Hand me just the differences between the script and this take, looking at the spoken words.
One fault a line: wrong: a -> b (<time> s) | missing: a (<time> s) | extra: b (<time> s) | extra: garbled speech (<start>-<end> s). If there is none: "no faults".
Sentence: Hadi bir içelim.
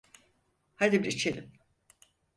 no faults